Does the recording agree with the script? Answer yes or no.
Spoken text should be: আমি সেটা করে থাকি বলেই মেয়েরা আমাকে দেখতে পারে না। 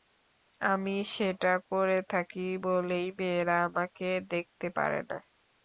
yes